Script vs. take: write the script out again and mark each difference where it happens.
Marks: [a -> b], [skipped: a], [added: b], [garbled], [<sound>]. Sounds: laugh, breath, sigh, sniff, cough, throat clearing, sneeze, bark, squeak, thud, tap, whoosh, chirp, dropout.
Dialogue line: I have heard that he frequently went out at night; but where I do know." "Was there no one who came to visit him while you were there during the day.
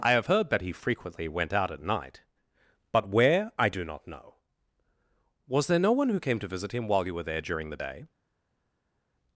I have heard that he frequently went out at night; but where I do [added: not] know." "Was there no one who came to visit him while you were there during the day.